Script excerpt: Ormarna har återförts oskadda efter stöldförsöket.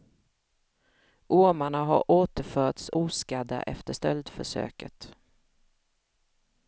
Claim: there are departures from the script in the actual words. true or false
false